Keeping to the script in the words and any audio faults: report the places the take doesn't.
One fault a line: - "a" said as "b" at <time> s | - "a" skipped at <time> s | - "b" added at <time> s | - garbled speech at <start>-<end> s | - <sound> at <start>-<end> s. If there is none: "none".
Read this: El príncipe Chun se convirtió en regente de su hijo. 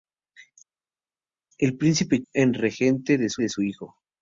- "Chun se convirtió en regente" said as "En regente de su" at 2.3 s